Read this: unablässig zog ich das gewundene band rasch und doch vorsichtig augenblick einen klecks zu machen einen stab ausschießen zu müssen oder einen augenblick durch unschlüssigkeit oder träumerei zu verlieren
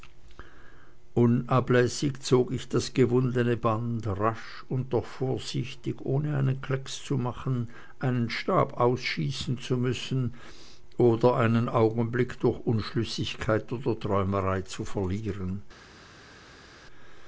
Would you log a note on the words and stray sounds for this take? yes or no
yes